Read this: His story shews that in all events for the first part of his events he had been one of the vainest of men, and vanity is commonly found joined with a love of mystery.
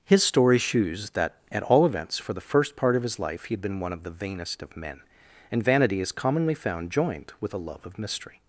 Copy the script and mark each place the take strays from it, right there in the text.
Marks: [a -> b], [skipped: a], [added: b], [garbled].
His story shews that [in -> at] all events for the first part of his [events -> life] he had been one of the vainest of men, and vanity is commonly found joined with a love of mystery.